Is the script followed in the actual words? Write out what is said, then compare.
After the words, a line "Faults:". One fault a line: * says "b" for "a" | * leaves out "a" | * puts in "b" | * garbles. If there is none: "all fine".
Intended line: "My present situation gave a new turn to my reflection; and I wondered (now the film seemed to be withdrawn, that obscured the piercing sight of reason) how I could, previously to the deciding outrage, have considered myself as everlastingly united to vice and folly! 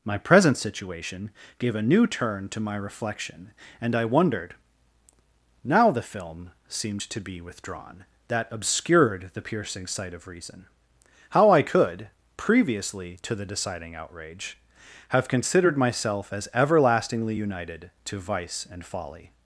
"My present situation gave a new turn to my reflection; and I wondered (now the film seemed to be withdrawn, that obscured the piercing sight of reason) how I could, previously to the deciding outrage, have considered myself as everlastingly united to vice and folly!
Faults:
all fine